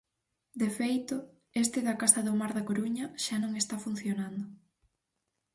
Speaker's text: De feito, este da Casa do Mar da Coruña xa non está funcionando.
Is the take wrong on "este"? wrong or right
right